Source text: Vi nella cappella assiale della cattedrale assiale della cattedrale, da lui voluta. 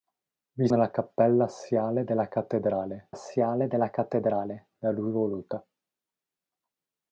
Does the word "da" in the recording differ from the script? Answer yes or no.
no